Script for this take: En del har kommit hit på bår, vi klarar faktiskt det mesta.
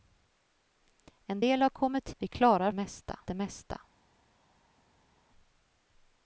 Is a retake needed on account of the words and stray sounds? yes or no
yes